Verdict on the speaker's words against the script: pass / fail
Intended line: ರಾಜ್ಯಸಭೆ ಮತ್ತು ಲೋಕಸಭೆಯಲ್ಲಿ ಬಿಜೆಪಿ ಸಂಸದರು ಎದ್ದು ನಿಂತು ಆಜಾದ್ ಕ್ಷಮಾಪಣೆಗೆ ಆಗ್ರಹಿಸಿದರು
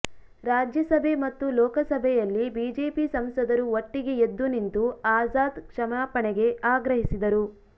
fail